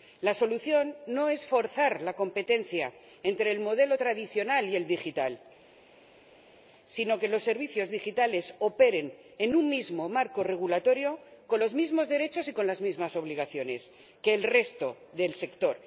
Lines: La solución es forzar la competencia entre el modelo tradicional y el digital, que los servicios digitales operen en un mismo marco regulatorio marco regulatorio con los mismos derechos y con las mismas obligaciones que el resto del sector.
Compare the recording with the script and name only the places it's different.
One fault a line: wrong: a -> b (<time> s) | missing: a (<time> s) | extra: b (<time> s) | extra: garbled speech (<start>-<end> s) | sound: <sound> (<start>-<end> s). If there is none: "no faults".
extra: no (1.1 s)
extra: sino (6.8 s)
missing: marco regulatorio (11.2 s)